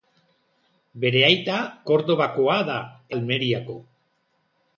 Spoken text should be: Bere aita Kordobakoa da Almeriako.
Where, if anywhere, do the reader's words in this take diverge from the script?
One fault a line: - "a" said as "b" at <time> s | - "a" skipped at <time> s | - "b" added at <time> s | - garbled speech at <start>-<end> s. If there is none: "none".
none